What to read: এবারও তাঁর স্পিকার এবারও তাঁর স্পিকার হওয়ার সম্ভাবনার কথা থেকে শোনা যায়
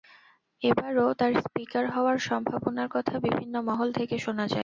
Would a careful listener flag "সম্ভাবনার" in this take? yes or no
no